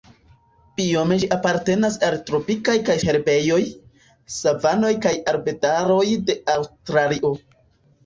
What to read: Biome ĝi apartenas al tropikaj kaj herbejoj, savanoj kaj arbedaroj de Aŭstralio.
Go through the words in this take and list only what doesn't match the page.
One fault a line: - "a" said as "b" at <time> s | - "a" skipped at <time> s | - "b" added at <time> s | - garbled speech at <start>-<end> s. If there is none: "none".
none